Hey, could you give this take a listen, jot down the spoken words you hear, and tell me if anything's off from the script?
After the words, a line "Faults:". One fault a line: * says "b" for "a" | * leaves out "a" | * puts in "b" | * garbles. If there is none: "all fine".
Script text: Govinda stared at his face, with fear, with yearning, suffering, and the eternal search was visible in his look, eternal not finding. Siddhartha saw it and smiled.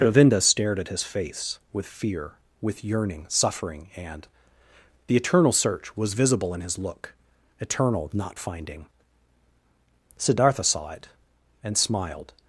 Govinda stared at his face, with fear, with yearning, suffering, and the eternal search was visible in his look, eternal not finding. Siddhartha saw it and smiled.
Faults:
all fine